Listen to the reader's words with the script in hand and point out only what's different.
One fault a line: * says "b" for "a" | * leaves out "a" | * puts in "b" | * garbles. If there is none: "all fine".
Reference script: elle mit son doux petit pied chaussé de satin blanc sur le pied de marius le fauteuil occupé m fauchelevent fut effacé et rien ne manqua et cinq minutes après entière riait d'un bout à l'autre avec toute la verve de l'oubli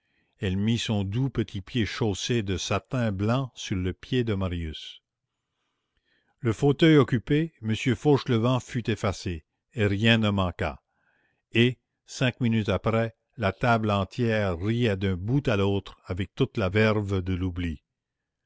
* puts in "la table"